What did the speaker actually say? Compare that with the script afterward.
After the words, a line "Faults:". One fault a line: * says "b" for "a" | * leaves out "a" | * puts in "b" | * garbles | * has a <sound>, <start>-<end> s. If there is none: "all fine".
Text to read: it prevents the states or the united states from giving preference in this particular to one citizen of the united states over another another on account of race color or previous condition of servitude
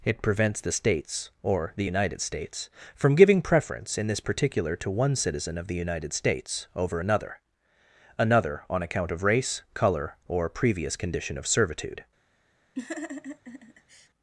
it prevents the states or the united states from giving preference in this particular to one citizen of the united states over another another on account of race color or previous condition of servitude
Faults:
* has a laugh, 12.8-14.1 s